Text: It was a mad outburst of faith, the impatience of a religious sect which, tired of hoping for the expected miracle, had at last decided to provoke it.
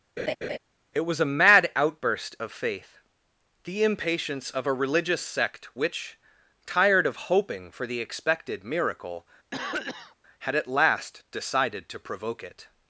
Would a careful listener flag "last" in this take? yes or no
no